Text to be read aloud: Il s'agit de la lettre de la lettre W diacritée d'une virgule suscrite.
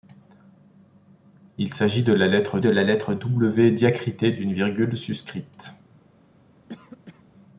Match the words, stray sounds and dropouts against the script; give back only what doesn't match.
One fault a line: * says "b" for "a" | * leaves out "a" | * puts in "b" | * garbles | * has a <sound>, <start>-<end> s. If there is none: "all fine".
* has a cough, 6.7-7.2 s